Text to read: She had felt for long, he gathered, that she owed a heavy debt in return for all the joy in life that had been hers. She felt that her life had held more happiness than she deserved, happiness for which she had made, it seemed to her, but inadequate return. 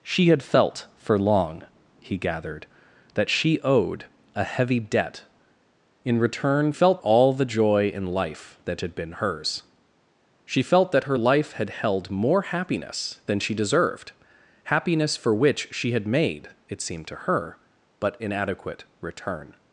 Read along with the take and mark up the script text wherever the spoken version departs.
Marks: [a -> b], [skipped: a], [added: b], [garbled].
She had felt for long, he gathered, that she owed a heavy debt in return [for -> felt] all the joy in life that had been hers. She felt that her life had held more happiness than she deserved, happiness for which she had made, it seemed to her, but inadequate return.